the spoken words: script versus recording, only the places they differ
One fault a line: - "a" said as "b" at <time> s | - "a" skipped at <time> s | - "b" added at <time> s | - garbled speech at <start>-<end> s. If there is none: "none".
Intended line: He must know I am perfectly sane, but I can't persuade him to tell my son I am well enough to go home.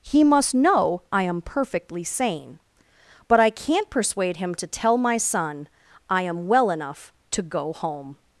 none